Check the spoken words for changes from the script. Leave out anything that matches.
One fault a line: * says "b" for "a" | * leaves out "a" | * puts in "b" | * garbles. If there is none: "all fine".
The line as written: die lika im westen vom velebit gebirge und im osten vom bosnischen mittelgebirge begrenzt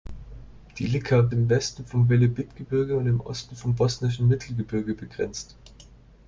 all fine